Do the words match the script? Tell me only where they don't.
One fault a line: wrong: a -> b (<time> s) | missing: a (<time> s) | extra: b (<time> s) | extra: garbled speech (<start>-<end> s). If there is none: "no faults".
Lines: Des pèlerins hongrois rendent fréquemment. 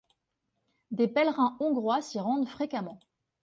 extra: s'y (2.0 s)